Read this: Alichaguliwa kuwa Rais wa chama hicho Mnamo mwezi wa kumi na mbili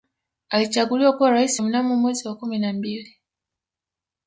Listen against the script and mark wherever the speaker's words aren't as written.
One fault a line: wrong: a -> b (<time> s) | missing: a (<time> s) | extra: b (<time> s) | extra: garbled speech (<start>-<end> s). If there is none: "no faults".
missing: wa chama hicho (1.6 s)